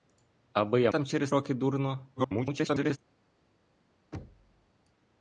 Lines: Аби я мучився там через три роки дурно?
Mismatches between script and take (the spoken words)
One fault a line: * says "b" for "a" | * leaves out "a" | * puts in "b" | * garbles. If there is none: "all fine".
* leaves out "мучився"
* leaves out "три"
* garbles